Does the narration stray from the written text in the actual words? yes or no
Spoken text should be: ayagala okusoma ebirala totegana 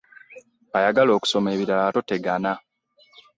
no